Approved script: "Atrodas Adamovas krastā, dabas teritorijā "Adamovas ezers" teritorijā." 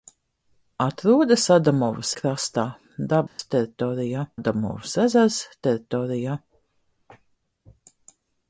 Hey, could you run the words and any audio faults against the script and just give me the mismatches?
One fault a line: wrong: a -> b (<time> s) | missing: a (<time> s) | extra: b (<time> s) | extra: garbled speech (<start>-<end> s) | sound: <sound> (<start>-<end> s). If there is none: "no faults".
sound: dropout (3.3-3.4 s)